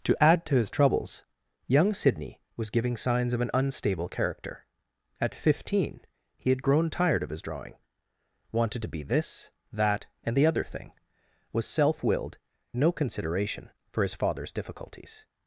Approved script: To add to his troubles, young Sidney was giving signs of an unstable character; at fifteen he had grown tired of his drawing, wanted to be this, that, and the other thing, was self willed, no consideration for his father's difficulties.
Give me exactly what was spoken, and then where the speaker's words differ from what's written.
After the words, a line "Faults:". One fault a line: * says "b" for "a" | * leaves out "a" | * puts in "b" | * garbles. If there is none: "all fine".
To add to his troubles, young Sidney was giving signs of an unstable character; at fifteen he had grown tired of his drawing, wanted to be this, that, and the other thing, was self willed, no consideration for his father's difficulties.
Faults:
all fine